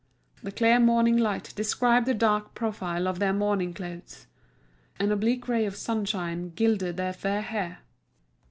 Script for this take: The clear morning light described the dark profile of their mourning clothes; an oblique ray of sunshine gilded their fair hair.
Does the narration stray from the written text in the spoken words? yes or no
no